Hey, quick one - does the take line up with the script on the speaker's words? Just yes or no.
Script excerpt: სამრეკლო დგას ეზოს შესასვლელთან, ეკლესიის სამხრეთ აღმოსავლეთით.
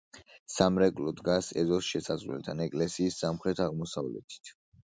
yes